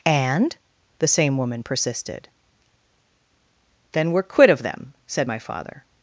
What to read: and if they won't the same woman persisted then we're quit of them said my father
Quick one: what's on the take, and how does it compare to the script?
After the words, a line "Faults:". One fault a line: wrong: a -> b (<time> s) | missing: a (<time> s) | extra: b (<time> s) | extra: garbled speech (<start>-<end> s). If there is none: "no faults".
and the same woman persisted then we're quit of them said my father
Faults:
missing: if they won't (0.6 s)